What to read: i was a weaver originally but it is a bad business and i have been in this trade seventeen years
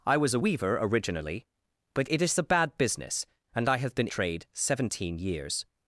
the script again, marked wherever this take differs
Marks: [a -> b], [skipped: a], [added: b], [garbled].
i was a weaver originally but it is a bad business and i have been [skipped: in this] trade seventeen years